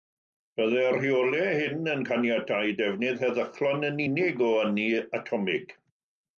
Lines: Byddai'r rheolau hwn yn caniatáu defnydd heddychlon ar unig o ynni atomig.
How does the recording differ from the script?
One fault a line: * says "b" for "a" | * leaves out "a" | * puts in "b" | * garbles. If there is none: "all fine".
* says "hyn" for "hwn"
* says "yn" for "ar"